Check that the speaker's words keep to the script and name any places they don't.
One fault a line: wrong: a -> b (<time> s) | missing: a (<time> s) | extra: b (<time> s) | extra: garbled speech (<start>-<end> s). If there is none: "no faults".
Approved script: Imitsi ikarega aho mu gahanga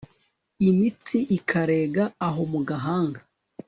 no faults